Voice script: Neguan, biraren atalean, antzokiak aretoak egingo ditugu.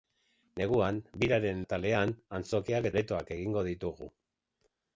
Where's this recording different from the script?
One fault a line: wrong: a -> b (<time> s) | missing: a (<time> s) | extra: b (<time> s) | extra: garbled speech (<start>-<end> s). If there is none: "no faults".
no faults